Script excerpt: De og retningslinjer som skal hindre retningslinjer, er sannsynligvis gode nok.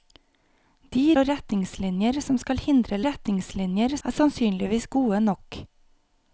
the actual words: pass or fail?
pass